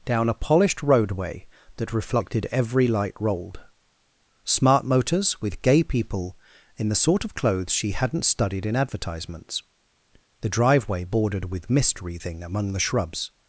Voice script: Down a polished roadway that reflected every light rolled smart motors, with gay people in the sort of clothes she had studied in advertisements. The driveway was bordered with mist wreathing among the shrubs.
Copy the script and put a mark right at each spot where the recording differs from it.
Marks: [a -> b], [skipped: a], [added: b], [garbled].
Down a polished roadway that reflected every light rolled smart motors, with gay people in the sort of clothes she [had -> hadn't] studied in advertisements. The driveway [skipped: was] bordered with mist wreathing among the shrubs.